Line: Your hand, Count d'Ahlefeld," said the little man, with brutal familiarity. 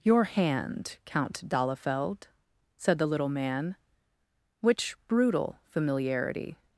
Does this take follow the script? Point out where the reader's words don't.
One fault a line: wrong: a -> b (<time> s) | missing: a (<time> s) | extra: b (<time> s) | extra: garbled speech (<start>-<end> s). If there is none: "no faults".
wrong: with -> which (4.6 s)